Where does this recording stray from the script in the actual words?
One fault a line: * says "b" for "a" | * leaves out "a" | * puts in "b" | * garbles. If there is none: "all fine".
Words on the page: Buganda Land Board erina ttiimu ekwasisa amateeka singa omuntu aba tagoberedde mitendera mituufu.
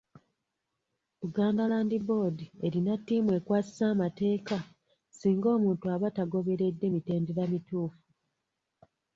all fine